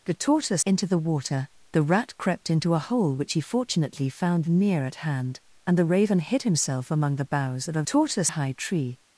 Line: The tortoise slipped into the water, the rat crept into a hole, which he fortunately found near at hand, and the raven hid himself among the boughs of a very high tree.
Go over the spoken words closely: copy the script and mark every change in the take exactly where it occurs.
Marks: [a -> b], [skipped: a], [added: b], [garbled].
The tortoise [skipped: slipped] into the water, the rat crept into a hole, which he fortunately found near at hand, and the raven hid himself among the boughs of a [very -> tortoise] high tree.